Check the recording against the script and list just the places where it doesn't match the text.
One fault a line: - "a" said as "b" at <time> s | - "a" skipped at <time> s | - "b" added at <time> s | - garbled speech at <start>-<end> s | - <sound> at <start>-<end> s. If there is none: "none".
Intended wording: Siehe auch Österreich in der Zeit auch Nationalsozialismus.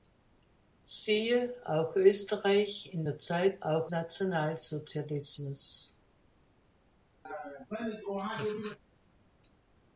- laugh at 7.2-8.8 s